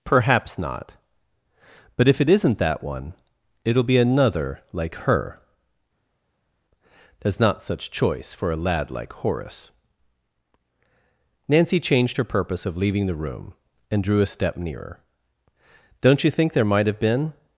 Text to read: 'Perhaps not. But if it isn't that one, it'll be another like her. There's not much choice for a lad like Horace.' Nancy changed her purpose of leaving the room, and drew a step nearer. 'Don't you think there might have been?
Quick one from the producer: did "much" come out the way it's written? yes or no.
no